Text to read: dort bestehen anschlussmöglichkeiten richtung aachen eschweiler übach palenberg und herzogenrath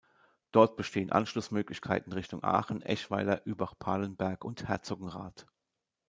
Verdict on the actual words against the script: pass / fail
pass